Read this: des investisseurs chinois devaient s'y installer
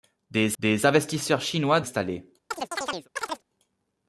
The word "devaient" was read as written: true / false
false